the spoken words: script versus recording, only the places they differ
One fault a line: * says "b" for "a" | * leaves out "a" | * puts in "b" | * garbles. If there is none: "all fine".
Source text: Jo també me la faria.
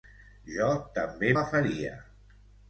* leaves out "me"